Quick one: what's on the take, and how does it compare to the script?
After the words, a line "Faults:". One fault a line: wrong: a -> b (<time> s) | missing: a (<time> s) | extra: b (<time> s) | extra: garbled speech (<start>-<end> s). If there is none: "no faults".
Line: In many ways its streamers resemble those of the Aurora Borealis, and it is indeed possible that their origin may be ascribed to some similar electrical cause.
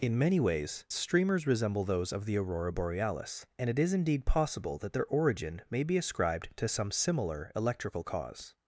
In many ways streamers resemble those of the Aurora Borealis, and it is indeed possible that their origin may be ascribed to some similar electrical cause.
Faults:
missing: its (0.9 s)